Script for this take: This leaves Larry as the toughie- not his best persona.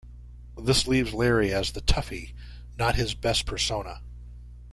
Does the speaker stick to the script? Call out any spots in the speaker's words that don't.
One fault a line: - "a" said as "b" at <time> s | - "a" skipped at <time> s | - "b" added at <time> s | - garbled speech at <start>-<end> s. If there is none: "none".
none